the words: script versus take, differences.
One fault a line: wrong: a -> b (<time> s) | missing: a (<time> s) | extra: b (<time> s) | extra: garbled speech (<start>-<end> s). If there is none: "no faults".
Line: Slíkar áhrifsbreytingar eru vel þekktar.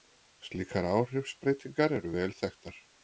no faults